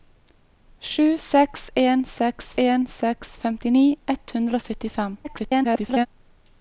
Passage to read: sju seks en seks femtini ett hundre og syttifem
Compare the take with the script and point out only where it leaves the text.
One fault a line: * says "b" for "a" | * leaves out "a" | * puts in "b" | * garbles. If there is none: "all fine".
* puts in "en seks"
* garbles